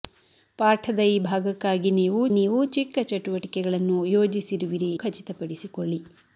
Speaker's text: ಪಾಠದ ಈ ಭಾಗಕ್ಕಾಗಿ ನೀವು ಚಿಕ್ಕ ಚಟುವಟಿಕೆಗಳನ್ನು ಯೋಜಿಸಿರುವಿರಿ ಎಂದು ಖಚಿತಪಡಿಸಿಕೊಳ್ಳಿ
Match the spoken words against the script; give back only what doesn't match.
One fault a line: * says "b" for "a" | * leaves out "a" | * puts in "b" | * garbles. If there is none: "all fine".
* puts in "ನೀವು"
* leaves out "ಎಂದು"